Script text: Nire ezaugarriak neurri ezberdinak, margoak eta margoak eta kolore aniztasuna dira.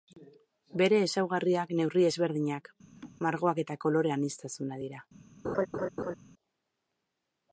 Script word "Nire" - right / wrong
wrong